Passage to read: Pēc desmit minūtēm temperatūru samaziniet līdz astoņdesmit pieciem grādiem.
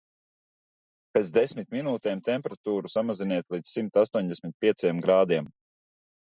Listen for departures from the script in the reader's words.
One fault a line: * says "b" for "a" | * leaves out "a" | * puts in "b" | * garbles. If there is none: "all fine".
* puts in "simt"